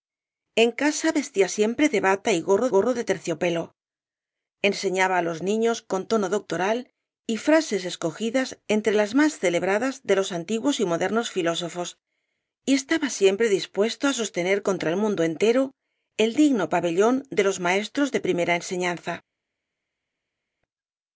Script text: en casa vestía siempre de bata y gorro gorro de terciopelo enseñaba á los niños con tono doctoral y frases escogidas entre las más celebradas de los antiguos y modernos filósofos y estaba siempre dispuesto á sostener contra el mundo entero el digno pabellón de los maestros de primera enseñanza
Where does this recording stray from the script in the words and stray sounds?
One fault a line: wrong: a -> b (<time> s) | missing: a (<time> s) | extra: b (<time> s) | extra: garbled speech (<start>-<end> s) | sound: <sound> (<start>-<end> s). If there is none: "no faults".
no faults